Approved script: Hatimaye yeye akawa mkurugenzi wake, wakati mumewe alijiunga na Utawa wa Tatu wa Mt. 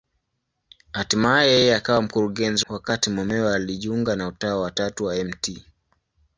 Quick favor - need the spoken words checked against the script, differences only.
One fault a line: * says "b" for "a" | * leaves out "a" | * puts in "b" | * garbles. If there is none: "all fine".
* leaves out "wake"